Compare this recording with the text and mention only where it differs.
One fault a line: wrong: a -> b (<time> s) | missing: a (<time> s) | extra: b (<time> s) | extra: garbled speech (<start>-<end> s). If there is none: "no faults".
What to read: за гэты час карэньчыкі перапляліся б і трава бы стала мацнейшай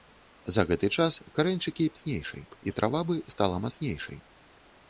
wrong: перапляліся -> мацнейшай (1.9 s)